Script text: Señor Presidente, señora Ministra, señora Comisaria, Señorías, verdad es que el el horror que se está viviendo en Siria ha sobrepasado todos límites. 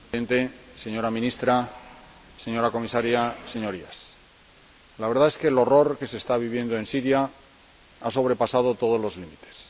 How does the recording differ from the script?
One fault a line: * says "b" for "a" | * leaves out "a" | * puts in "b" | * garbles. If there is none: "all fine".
* puts in "la"
* leaves out "el"
* puts in "los"